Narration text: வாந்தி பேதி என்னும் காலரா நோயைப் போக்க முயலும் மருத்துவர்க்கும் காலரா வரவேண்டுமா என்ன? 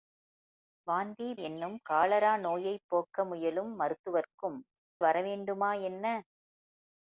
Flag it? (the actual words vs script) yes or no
yes